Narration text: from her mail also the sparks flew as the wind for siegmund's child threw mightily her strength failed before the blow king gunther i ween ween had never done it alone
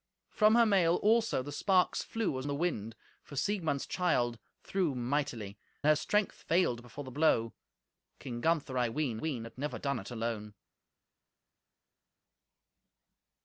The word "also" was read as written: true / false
true